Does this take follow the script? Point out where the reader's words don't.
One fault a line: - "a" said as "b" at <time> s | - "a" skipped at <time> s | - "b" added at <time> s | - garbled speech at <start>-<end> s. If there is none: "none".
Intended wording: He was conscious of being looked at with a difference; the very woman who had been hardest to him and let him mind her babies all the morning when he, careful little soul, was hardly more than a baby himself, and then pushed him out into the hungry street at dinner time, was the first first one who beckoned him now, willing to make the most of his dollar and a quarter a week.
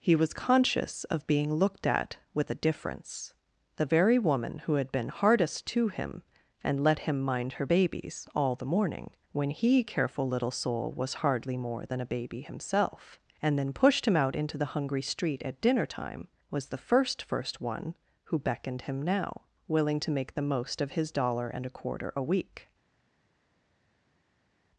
none